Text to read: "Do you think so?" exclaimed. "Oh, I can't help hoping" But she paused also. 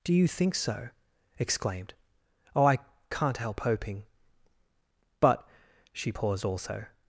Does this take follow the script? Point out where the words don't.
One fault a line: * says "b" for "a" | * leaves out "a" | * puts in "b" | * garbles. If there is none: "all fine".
all fine